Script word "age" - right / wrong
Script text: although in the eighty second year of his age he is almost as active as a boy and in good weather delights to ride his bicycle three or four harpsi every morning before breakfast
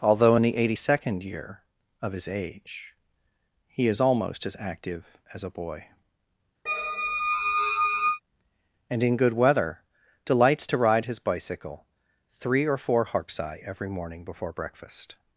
right